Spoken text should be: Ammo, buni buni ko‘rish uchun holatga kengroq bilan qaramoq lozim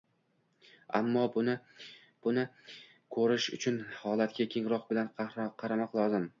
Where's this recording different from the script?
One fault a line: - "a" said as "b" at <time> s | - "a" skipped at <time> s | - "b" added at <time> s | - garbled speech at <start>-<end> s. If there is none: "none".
none